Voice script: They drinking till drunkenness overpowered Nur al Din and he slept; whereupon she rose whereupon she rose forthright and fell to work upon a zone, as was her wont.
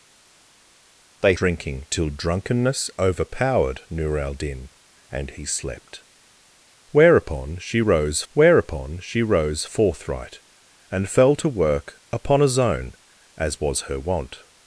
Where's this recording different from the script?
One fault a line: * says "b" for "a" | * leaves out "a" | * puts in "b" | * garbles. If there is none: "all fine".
all fine